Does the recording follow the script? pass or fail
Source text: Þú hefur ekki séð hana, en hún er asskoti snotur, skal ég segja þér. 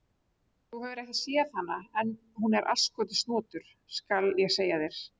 pass